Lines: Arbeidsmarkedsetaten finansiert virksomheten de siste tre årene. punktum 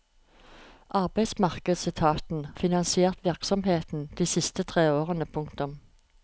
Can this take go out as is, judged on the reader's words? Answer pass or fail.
pass